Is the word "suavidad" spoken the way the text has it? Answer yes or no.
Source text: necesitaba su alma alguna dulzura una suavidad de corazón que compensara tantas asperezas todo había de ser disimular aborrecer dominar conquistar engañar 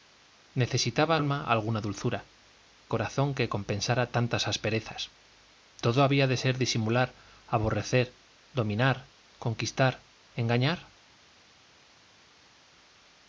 no